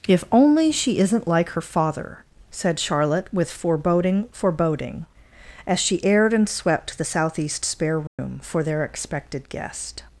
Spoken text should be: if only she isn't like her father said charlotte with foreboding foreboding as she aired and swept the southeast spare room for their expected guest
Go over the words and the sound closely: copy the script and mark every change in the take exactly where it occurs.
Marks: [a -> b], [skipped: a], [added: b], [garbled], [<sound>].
if only she isn't like her father said charlotte with foreboding foreboding as she aired and swept the southeast spare room [dropout] for their expected guest